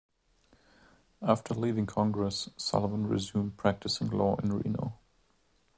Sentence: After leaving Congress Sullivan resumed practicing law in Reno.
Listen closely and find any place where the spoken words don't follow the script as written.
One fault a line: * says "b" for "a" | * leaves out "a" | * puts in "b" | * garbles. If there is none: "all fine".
all fine